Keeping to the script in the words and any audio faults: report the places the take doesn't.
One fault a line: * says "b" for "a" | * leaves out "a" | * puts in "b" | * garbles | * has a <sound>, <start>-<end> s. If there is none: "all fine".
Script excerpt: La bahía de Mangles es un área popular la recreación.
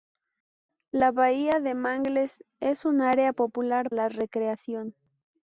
all fine